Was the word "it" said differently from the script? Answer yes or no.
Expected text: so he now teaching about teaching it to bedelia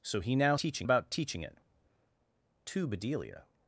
no